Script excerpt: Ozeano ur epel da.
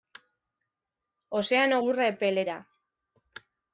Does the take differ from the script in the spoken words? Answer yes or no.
no